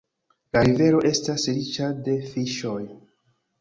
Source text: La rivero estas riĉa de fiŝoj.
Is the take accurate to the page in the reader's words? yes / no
yes